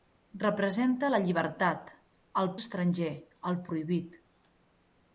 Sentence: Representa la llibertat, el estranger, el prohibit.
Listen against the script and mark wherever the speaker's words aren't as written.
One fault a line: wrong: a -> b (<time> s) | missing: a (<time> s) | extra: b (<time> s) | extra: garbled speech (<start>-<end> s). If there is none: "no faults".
no faults